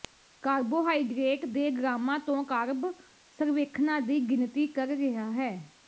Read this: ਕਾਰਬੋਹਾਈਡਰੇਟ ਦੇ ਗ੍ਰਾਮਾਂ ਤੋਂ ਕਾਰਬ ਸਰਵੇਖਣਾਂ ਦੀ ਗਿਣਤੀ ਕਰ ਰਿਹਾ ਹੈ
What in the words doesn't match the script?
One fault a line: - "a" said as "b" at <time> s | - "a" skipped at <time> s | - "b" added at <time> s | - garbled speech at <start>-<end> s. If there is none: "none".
none